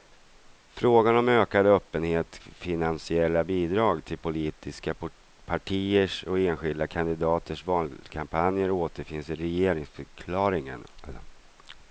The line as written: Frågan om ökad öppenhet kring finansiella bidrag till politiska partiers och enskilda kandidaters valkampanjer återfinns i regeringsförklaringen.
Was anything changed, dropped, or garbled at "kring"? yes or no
yes